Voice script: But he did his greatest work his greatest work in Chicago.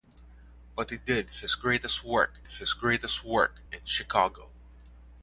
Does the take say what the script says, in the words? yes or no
yes